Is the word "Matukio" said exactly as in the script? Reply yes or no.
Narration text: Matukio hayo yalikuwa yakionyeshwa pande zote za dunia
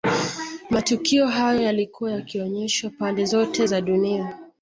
yes